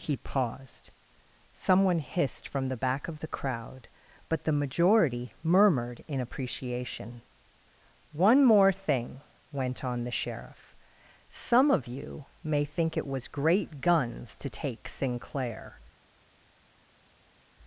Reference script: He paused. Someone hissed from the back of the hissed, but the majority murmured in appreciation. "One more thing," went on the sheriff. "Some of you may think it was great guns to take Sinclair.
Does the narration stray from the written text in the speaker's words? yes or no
yes